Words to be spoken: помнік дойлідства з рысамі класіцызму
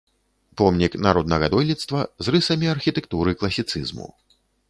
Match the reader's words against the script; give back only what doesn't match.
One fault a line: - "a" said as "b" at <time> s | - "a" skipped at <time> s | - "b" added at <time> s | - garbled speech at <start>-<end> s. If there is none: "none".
- "народнага" added at 1.1 s
- "архітэктуры" added at 2.7 s